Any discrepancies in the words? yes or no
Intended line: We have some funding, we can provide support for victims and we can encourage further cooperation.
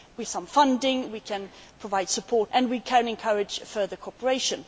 yes